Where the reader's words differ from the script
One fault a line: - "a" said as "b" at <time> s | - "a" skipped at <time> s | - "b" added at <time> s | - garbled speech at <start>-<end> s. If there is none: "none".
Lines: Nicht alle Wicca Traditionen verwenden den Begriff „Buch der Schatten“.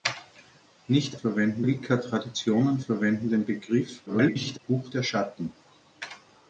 - "alle" said as "verwenden" at 1.1 s
- garbled speech at 4.1-4.6 s